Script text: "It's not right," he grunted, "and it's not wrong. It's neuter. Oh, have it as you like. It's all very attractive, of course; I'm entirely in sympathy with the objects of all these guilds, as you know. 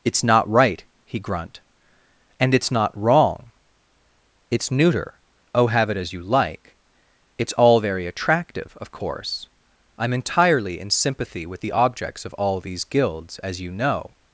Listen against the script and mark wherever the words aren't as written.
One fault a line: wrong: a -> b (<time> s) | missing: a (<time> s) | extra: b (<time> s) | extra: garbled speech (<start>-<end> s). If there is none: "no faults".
wrong: grunted -> grunt (1.2 s)